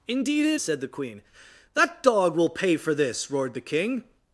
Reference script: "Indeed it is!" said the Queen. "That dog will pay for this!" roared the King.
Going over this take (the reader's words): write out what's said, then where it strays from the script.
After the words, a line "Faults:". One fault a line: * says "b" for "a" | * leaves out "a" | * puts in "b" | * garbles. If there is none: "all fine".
"Indeed it!" said the Queen. "That dog will pay for this!" roared the King.
Faults:
* leaves out "is"